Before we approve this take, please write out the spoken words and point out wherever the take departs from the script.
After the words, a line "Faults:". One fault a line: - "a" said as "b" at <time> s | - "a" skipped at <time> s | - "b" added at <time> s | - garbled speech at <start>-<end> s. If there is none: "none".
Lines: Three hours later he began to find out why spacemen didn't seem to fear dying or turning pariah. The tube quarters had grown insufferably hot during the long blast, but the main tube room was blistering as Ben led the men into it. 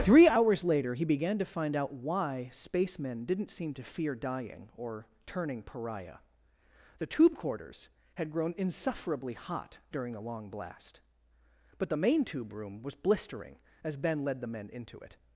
Three hours later he began to find out why spacemen didn't seem to fear dying or turning pariah. The tube quarters had grown insufferably hot during the long blast, but the main tube room was blistering as Ben led the men into it.
Faults:
none